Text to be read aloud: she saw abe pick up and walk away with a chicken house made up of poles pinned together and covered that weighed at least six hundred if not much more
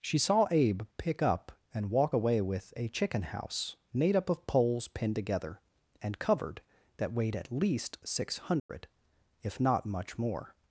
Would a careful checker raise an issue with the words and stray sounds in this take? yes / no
yes